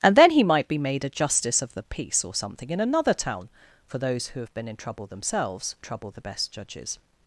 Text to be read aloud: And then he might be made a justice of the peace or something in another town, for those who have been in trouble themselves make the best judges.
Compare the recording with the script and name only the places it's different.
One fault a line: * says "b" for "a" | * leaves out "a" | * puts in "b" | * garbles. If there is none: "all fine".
* says "trouble" for "make"